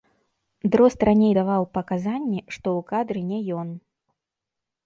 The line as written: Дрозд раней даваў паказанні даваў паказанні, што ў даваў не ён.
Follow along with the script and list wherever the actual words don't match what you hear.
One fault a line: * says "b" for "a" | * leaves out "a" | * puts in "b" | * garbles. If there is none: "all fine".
* leaves out "даваў паказанні"
* says "кадры" for "даваў"